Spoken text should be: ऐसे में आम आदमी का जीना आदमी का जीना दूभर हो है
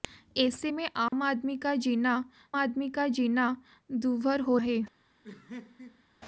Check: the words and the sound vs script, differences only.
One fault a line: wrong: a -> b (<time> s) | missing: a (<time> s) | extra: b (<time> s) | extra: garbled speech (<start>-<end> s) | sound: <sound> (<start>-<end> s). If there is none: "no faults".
sound: dropout (1.1-1.1 s)
sound: laugh (5.2-6.0 s)